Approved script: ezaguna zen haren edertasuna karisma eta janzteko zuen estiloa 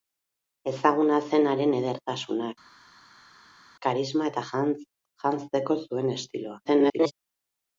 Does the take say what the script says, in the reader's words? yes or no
no